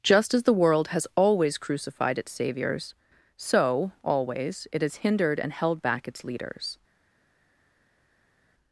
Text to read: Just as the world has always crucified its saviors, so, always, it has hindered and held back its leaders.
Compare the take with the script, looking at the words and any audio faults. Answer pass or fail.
pass